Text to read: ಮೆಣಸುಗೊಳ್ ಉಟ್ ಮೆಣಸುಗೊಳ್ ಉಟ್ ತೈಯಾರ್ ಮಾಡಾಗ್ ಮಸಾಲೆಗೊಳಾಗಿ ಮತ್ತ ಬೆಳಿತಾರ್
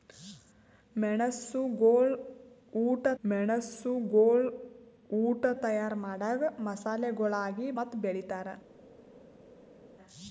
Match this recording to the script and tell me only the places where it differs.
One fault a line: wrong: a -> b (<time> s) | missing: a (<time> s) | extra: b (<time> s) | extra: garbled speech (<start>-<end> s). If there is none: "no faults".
no faults